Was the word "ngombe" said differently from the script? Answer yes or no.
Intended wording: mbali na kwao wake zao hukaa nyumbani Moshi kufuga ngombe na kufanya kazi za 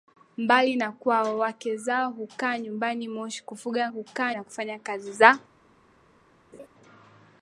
yes